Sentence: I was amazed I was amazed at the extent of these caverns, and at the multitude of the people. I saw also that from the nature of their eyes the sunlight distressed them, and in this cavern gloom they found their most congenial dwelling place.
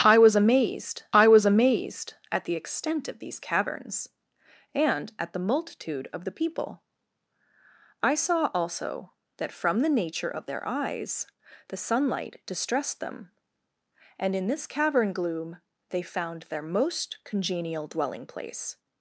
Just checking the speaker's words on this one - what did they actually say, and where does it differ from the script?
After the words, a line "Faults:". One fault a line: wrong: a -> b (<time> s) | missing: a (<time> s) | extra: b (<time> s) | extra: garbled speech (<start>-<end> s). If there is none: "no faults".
I was amazed I was amazed at the extent of these caverns, and at the multitude of the people. I saw also that from the nature of their eyes the sunlight distressed them, and in this cavern gloom they found their most congenial dwelling place.
Faults:
no faults